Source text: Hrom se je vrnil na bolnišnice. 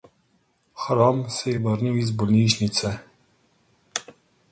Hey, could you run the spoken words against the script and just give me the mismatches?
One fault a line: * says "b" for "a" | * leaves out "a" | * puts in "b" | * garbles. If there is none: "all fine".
* says "iz" for "na"